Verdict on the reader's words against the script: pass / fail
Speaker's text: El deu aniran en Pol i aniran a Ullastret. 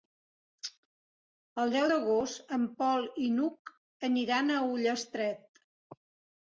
fail